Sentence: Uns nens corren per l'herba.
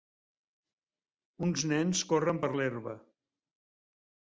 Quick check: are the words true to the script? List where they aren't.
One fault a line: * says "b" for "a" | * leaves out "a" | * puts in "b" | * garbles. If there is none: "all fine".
all fine